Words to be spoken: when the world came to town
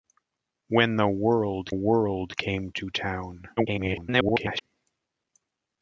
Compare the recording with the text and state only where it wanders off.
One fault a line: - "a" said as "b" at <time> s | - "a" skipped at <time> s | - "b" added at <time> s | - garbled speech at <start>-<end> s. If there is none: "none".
- "world" added at 1.7 s
- garbled speech at 3.6-4.6 s